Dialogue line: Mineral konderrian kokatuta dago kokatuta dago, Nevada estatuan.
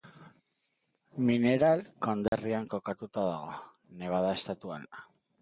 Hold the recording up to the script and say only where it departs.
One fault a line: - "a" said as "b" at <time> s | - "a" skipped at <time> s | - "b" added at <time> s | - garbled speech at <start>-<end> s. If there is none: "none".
- "kokatuta dago" skipped at 3.6 s